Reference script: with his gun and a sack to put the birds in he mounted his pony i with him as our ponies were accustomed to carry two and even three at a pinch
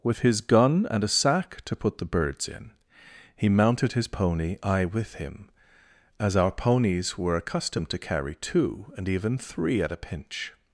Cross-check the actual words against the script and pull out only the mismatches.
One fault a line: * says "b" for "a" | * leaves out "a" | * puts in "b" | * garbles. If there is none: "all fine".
all fine